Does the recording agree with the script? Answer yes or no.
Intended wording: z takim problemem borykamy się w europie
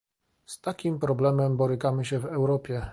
yes